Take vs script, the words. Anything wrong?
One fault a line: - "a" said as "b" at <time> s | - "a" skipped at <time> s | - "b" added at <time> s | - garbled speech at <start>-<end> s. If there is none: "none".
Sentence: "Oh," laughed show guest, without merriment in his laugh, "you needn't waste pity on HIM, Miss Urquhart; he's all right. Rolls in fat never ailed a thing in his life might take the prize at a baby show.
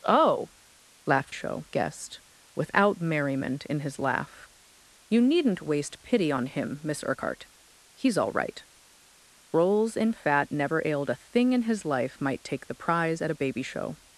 none